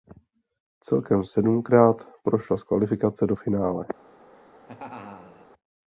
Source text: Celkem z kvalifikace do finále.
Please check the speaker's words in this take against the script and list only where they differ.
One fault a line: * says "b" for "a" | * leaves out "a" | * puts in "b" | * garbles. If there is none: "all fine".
* puts in "sedmkrát prošla"